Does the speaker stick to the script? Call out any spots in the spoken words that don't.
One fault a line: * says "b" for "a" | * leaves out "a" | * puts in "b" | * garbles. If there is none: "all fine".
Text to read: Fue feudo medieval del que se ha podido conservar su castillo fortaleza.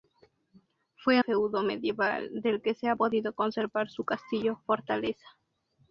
all fine